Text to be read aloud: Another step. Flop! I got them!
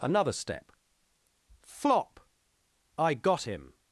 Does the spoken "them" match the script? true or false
false